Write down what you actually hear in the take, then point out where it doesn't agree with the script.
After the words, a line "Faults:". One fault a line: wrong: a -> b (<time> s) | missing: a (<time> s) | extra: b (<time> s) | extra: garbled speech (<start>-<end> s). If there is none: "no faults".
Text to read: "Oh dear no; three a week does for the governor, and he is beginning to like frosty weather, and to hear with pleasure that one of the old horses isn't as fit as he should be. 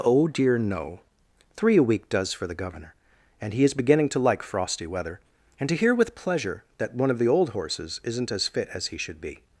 "Oh dear no; three a week does for the governor, and he is beginning to like frosty weather, and to hear with pleasure that one of the old horses isn't as fit as he should be.
Faults:
no faults